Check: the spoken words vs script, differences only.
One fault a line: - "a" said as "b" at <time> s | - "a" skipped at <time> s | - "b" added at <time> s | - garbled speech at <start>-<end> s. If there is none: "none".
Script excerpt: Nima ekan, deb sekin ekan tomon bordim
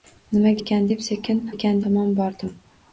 none